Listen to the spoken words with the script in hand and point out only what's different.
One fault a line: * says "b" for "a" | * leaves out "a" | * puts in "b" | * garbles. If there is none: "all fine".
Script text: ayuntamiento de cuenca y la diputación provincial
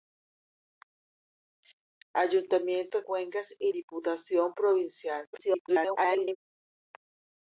* leaves out "de"
* leaves out "la"
* garbles